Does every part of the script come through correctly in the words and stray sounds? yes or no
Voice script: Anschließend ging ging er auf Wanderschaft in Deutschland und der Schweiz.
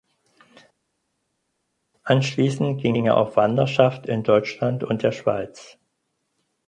yes